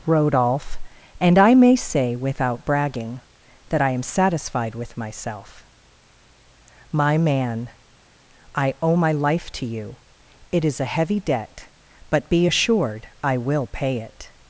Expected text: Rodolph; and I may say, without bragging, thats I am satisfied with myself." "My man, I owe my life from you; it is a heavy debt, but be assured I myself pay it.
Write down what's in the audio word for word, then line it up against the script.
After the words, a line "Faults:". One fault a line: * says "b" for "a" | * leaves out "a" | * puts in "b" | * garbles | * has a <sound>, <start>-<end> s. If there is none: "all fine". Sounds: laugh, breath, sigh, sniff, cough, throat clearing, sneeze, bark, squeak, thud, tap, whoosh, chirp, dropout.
Rodolph; and I may say, without bragging, that I am satisfied with myself." "My man, I owe my life to you; it is a heavy debt, but be assured I will pay it.
Faults:
* says "that" for "thats"
* says "to" for "from"
* says "will" for "myself"